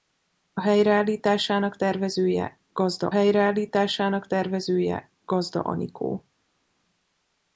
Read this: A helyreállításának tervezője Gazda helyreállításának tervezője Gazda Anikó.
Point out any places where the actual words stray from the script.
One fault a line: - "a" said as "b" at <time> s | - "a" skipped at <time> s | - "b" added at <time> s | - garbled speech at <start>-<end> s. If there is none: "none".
none